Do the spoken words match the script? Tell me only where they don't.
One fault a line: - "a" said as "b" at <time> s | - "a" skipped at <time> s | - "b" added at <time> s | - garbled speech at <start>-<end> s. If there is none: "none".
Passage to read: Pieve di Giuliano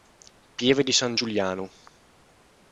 - "San" added at 0.9 s